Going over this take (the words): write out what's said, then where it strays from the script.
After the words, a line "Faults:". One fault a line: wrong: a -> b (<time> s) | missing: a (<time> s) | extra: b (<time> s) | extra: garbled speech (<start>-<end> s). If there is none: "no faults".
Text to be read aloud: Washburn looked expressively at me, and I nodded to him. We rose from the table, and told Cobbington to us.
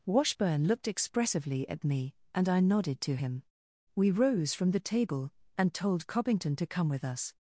Washburn looked expressively at me, and I nodded to him. We rose from the table, and told Cobbington to come with us.
Faults:
extra: come with (6.7 s)